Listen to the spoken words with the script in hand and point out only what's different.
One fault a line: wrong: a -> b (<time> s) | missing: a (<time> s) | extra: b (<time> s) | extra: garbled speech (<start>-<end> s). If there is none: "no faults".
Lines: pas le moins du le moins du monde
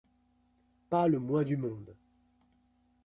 missing: le moins du (1.6 s)